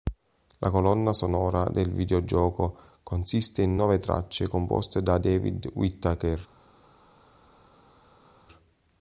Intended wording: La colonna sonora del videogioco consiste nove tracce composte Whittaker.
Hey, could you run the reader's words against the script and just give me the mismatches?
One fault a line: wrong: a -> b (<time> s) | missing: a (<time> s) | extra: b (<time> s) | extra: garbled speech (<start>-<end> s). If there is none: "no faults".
extra: in (3.6 s)
extra: da David (5.0 s)